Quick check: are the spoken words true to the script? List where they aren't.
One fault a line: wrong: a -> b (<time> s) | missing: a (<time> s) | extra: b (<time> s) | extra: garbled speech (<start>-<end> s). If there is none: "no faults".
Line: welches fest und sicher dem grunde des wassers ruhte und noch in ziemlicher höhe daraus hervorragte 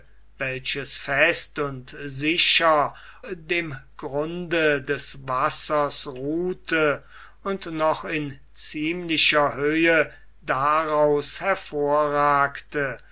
no faults